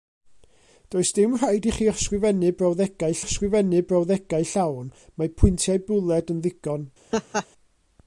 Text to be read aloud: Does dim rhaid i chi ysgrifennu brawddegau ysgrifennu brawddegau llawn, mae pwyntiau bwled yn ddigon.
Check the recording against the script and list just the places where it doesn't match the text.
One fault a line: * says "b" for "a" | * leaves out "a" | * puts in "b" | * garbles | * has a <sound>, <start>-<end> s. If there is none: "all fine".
* has a laugh, 7.1-7.5 s